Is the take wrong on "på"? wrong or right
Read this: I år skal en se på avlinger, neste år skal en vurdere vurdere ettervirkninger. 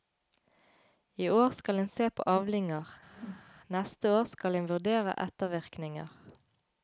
right